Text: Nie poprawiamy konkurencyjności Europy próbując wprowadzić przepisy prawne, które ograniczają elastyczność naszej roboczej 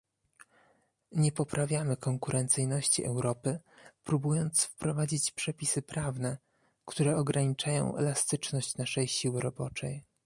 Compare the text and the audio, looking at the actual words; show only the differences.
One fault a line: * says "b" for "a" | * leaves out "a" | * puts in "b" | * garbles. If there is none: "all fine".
* puts in "siły"